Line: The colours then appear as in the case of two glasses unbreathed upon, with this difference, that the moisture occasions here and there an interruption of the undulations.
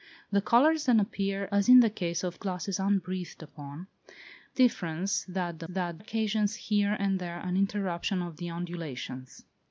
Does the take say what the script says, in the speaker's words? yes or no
no